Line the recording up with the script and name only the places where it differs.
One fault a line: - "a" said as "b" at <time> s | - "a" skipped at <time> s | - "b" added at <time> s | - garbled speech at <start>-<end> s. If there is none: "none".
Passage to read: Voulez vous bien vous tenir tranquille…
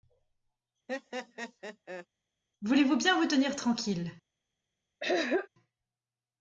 none